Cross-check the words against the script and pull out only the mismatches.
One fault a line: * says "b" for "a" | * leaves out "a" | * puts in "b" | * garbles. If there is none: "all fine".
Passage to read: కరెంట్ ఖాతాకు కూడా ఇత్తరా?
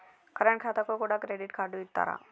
* puts in "క్రెడిట్ కార్డు"